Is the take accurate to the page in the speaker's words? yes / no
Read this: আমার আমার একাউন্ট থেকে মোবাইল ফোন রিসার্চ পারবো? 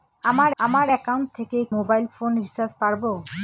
yes